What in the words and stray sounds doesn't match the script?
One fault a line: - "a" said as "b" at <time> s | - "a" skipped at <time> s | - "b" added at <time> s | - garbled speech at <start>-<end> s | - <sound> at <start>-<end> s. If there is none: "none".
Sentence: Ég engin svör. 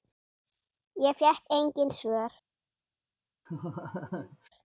- "fékk" added at 1.1 s
- laugh at 3.5-4.5 s